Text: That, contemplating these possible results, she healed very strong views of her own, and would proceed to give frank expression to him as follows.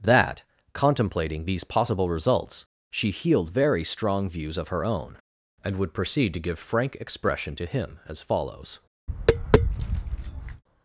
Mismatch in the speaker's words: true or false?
false